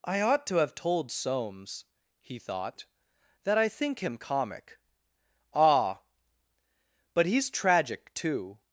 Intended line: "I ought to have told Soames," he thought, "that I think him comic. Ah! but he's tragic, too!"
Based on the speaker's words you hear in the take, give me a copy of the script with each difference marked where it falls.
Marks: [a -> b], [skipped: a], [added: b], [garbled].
"I ought to have told Soames," he thought, "that I think him comic. Ah! but he's tragic, too!"